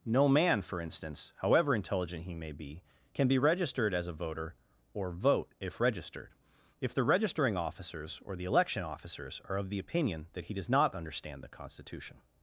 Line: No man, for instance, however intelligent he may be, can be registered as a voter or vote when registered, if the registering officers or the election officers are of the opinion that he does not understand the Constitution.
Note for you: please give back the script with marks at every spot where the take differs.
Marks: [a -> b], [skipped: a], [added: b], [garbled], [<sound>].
No man, for instance, however intelligent he may be, can be registered as a voter or vote [when -> if] registered, if the registering officers or the election officers are of the opinion that he does not understand the Constitution.